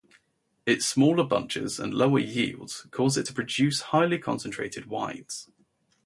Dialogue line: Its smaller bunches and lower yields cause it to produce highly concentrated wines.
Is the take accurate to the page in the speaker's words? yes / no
yes